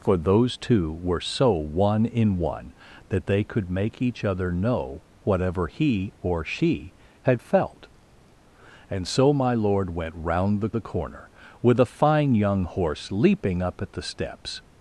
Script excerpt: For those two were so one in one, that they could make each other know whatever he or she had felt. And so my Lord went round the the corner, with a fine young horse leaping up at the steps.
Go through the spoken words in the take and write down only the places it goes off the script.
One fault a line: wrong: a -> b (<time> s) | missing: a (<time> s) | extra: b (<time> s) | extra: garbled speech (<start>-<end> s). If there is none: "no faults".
no faults